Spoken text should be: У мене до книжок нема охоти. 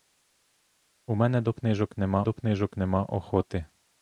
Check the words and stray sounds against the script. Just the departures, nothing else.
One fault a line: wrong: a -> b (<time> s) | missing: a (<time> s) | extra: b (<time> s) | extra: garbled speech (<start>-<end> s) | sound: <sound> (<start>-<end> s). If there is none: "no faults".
extra: до книжок нема (2.2 s)